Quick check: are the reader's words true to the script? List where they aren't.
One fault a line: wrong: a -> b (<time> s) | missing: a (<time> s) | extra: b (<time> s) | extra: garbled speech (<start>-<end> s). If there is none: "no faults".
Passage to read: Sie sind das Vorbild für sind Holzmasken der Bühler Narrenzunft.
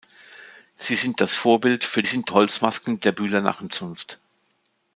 no faults